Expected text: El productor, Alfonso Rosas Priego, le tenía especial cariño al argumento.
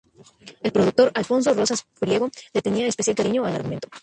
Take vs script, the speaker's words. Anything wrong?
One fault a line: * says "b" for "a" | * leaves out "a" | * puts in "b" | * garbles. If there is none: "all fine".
all fine